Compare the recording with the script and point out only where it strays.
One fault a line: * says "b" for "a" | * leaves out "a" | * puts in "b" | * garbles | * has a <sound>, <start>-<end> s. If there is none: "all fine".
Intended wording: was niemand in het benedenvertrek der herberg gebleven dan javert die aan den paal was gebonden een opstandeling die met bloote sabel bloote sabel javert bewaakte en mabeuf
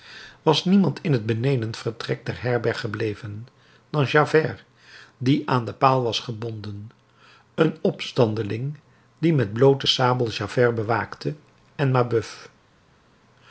* leaves out "bloote sabel"